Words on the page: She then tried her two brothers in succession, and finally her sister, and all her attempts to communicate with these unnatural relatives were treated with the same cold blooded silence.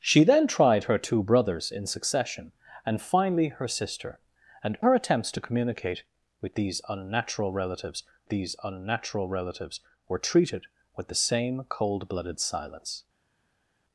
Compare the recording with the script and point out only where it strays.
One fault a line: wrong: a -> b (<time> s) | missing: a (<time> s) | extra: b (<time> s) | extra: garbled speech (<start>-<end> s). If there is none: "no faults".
missing: all (4.8 s)
extra: these unnatural relatives (8.3 s)